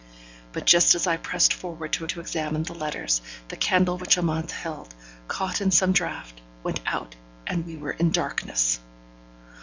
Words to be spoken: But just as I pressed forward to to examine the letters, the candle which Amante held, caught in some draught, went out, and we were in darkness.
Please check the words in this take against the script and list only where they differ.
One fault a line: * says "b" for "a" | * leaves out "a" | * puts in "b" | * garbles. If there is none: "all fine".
all fine